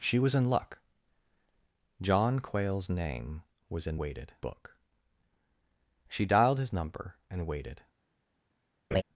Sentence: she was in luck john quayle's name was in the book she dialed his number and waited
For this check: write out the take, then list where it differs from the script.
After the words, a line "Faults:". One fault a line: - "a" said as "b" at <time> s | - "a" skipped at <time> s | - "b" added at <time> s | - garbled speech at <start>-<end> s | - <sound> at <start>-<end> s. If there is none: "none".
she was in luck john quayle's name was in waited book she dialed his number and waited
Faults:
- "the" said as "waited" at 4.0 s
- laugh at 8.9-9.0 s